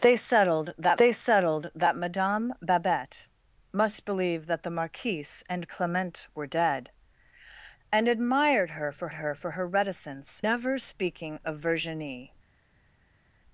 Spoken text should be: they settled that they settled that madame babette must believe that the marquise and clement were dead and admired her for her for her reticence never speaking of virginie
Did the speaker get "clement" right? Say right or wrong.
right